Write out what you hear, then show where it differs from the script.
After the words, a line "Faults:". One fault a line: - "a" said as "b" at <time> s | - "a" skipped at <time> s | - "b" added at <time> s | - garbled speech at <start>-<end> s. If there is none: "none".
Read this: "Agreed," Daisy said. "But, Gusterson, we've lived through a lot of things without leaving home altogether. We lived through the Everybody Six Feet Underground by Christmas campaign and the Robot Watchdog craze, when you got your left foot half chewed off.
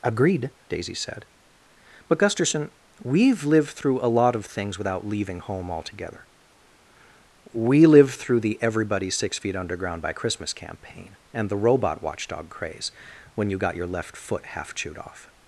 "Agreed," Daisy said. "But, Gusterson, we've lived through a lot of things without leaving home altogether. We lived through the Everybody Six Feet Underground by Christmas campaign and the Robot Watchdog craze, when you got your left foot half chewed off.
Faults:
none